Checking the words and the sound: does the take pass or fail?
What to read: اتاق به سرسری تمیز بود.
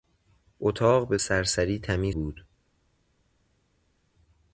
pass